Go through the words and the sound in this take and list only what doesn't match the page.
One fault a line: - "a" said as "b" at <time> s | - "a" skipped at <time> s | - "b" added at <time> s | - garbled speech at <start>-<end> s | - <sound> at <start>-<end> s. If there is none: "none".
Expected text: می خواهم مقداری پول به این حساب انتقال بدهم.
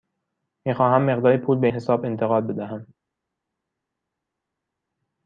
- "این" skipped at 1.7 s